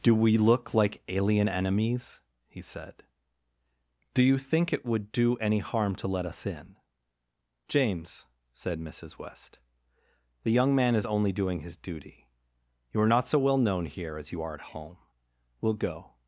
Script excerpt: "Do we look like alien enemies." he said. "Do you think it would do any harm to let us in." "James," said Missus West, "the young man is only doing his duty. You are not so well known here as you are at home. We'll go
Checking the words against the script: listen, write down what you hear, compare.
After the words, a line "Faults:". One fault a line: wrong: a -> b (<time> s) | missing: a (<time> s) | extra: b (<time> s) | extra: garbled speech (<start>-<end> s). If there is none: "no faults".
"Do we look like alien enemies." he said. "Do you think it would do any harm to let us in." "James," said Missus West, "the young man is only doing his duty. You are not so well known here as you are at home. We'll go
Faults:
no faults